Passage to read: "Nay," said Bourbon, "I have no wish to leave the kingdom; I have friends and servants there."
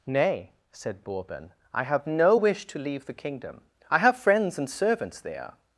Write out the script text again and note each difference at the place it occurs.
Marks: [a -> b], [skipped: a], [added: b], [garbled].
"Nay," said Bourbon, "I have no wish to leave the kingdom; I have friends and servants there."